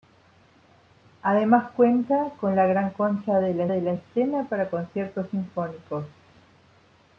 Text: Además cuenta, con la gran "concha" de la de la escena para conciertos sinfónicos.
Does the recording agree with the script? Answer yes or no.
yes